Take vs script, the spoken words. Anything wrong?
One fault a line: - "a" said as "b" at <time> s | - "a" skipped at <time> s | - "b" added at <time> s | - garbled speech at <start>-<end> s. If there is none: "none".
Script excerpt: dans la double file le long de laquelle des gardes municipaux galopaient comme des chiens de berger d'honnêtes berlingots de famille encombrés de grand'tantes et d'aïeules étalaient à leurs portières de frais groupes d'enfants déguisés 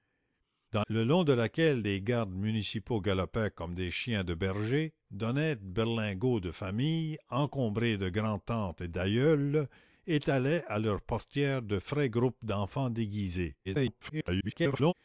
- "la double file" skipped at 0.8 s
- garbled speech at 13.6-14.9 s